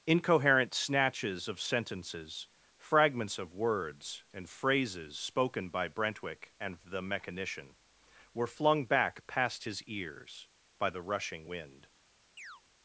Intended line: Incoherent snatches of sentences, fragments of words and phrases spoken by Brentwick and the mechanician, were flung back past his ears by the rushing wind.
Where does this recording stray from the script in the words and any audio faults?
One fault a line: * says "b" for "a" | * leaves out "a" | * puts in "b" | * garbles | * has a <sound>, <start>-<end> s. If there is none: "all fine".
* has a chirp, 12.4-12.6 s